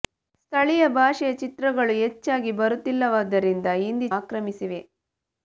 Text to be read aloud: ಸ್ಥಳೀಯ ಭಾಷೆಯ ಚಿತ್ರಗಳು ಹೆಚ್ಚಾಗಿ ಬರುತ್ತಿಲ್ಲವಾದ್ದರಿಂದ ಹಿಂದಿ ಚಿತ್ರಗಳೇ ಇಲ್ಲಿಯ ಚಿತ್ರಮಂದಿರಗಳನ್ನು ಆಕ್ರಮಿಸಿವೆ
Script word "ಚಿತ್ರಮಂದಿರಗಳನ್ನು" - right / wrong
wrong